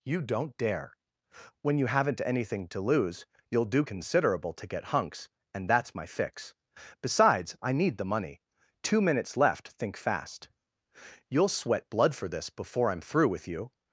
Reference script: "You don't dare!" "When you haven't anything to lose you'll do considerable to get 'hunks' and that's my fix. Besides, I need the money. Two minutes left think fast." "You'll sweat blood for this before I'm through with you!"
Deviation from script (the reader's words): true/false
false